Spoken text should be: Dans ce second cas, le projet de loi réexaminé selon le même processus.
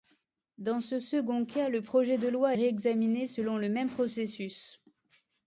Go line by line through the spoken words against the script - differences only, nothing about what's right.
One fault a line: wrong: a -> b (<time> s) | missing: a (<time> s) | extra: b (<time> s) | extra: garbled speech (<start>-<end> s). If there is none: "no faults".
no faults